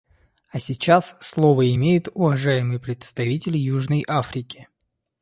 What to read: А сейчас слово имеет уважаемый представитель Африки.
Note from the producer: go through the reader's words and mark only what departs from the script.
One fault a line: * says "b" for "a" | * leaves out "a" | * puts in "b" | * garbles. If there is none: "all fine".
* puts in "Южной"